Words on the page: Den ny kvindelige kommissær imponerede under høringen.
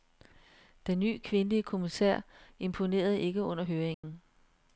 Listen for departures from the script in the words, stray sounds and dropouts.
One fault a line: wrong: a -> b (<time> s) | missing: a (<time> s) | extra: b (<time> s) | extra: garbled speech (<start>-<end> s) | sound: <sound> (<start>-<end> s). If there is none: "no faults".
extra: ikke (3.2 s)
sound: dropout (3.9-4.0 s)